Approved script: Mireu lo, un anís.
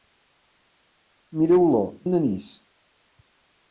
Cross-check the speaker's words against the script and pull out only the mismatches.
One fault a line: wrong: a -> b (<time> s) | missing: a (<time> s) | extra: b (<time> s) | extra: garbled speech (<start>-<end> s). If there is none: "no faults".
no faults